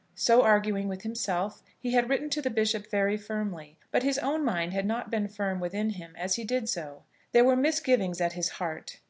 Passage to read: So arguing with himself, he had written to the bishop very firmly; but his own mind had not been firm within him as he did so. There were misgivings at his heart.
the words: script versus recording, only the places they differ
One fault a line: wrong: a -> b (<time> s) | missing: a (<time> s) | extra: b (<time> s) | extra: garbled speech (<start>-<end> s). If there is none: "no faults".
no faults